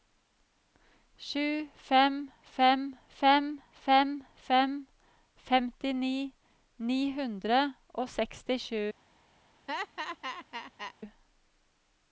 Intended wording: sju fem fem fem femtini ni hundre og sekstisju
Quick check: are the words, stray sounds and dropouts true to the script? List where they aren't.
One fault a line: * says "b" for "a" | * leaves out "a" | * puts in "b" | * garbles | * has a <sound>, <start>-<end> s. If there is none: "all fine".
* puts in "fem fem"
* has a laugh, 9.7-10.9 s